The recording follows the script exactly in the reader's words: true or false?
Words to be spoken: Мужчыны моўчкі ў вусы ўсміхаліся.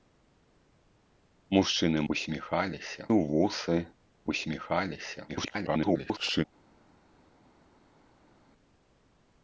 false